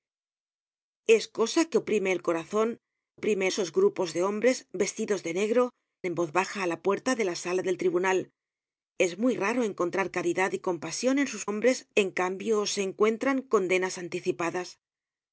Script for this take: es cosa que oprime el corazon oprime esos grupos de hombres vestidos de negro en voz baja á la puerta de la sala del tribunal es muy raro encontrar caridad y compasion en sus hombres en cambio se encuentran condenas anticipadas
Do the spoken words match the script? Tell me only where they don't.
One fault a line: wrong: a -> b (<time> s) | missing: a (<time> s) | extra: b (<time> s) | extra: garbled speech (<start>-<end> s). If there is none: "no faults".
no faults